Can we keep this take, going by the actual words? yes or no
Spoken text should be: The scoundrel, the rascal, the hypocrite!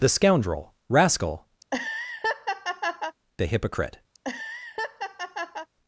no